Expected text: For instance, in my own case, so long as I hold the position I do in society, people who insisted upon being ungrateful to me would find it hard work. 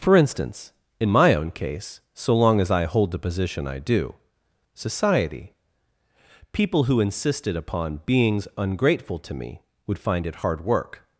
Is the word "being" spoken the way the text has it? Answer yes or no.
no